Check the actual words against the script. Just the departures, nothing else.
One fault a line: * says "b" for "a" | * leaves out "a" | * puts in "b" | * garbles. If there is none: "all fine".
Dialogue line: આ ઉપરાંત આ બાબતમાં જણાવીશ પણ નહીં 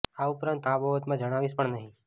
all fine